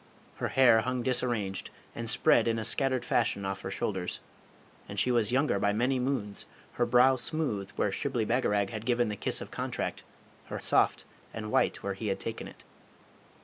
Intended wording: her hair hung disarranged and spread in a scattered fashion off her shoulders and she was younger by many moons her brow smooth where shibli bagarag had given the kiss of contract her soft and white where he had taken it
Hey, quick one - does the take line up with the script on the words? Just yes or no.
yes